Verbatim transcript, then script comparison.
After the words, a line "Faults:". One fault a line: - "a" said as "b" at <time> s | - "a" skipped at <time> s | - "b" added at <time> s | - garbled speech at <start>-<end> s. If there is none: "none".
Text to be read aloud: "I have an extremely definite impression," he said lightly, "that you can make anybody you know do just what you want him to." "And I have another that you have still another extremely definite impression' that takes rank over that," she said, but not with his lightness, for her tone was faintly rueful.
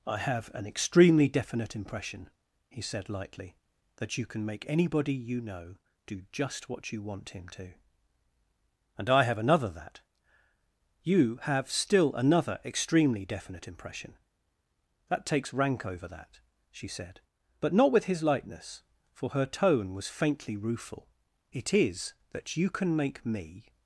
"I have an extremely definite impression," he said lightly, "that you can make anybody you know do just what you want him to." "And I have another that you have still another extremely definite impression' that takes rank over that," she said, but not with his lightness, for her tone was faintly rueful. "It is that you can make me
Faults:
- "It is that you can make me" added at 21.5 s